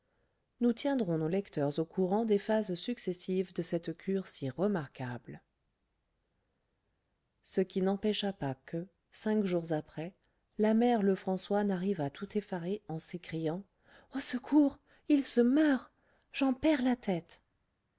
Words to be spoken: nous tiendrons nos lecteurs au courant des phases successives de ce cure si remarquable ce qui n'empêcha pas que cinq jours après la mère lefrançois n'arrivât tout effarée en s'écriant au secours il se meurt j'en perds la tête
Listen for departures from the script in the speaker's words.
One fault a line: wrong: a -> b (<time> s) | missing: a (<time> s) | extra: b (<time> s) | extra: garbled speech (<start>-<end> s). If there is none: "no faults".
wrong: ce -> cette (3.6 s)